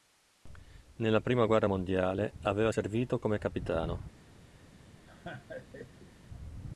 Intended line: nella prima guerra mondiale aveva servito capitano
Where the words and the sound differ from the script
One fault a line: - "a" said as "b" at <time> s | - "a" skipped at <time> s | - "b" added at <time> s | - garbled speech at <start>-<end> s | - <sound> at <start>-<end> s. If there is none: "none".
- "come" added at 3.2 s
- laugh at 5.1-6.2 s